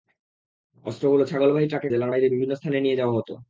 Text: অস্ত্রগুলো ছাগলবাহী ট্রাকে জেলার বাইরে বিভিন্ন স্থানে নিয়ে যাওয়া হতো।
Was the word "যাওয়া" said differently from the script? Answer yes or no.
no